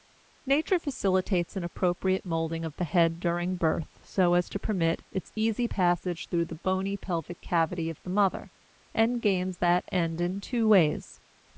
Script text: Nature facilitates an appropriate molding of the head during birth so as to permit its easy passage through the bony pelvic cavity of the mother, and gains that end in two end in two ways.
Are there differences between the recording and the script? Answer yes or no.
yes